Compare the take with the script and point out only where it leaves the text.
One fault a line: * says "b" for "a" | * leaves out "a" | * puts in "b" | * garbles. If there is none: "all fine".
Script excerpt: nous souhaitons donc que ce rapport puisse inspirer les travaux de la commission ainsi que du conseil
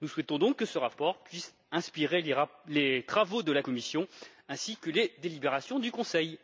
* puts in "les délibérations"